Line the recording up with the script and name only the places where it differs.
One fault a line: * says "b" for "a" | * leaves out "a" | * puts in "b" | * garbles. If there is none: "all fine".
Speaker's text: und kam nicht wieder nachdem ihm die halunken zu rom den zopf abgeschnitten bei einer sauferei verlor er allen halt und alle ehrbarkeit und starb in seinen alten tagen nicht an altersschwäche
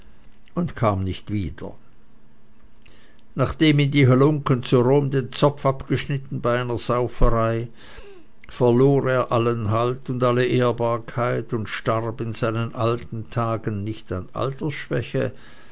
all fine